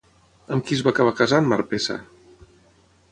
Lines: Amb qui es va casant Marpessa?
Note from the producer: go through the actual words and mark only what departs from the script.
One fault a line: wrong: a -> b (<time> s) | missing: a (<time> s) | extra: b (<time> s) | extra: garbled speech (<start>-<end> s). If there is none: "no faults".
extra: acabar (0.9 s)